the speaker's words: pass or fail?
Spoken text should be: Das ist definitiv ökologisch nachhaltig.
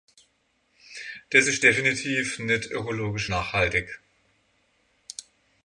fail